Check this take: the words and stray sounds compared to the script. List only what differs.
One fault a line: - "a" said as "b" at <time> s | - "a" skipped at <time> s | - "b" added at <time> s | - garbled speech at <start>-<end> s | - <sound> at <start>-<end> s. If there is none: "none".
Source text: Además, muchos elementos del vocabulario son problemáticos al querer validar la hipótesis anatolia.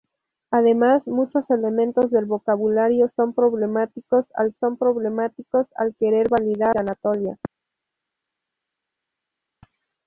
- "son problemáticos al" added at 4.5 s
- "la hipótesis" skipped at 6.7 s